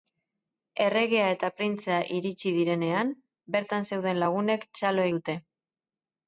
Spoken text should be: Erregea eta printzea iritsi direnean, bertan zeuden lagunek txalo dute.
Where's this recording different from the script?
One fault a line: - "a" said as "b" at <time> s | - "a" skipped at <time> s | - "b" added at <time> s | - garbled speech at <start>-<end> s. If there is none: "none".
none